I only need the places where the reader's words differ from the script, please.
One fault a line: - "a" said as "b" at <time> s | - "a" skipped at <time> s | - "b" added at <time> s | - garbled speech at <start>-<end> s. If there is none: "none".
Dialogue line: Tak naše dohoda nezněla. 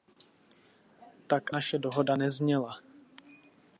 none